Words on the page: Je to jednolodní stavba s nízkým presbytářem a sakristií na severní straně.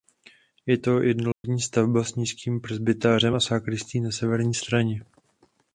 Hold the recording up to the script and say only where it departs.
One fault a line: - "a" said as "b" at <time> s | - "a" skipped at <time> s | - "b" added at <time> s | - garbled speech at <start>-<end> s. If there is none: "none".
none